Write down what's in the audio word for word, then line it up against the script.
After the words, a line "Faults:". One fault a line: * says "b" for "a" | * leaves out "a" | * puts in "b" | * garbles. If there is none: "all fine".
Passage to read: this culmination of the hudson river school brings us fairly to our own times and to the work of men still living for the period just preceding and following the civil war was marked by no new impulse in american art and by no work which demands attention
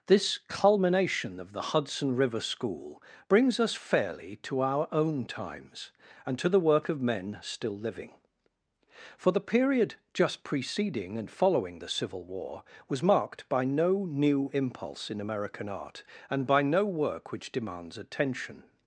this culmination of the hudson river school brings us fairly to our own times and to the work of men still living for the period just preceding and following the civil war was marked by no new impulse in american art and by no work which demands attention
Faults:
all fine